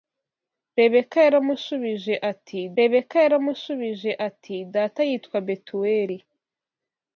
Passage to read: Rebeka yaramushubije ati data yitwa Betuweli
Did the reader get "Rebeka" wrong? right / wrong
right